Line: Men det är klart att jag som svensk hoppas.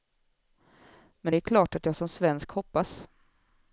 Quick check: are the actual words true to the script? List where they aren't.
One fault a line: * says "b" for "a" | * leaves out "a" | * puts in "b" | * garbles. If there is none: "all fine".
all fine